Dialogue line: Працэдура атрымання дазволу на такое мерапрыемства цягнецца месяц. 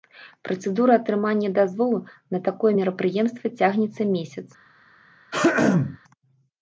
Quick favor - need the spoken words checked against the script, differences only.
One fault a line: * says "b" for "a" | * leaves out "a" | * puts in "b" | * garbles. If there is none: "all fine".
all fine